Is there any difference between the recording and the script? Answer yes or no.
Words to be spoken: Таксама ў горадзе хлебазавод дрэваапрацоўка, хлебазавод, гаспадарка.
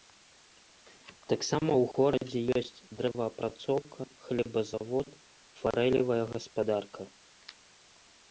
yes